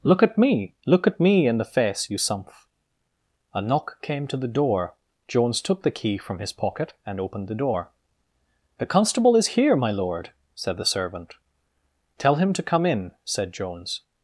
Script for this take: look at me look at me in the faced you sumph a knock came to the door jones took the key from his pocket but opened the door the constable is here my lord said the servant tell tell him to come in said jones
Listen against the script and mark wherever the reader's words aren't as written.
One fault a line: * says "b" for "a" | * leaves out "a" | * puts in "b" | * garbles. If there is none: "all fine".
* says "face" for "faced"
* says "and" for "but"
* leaves out "tell"